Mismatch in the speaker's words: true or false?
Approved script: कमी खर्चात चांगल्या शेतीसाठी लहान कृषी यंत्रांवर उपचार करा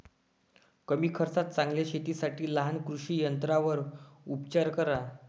false